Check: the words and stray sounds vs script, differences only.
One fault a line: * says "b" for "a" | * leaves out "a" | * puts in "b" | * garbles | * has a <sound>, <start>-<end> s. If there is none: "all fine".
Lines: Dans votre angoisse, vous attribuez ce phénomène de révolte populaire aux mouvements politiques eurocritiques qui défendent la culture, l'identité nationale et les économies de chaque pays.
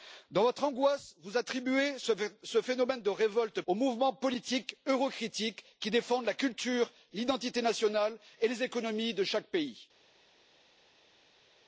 * leaves out "populaire"